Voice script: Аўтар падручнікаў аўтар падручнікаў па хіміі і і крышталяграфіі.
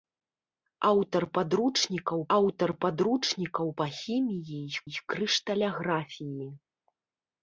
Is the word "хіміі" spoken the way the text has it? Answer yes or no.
yes